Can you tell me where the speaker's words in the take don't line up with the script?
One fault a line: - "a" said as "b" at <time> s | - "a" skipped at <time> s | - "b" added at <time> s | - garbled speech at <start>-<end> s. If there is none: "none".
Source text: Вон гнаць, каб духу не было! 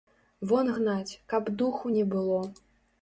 none